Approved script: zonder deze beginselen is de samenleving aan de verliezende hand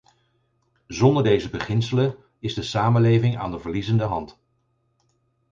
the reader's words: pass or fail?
pass